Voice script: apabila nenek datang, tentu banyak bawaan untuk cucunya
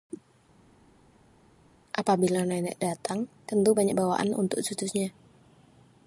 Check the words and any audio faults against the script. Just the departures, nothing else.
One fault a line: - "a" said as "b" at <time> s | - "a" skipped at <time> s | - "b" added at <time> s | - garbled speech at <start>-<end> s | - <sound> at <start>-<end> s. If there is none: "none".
none